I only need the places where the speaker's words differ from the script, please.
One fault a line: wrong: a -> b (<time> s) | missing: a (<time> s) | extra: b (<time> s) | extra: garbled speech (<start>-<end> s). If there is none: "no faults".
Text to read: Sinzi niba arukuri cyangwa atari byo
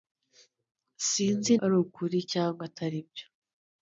missing: niba (1.5 s)